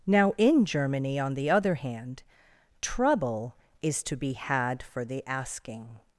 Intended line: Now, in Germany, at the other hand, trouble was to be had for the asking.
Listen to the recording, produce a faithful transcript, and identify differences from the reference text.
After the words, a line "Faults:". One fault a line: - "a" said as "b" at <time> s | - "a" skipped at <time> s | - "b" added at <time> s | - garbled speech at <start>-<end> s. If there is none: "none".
Now, in Germany, on the other hand, trouble is to be had for the asking.
Faults:
- "at" said as "on" at 1.2 s
- "was" said as "is" at 3.8 s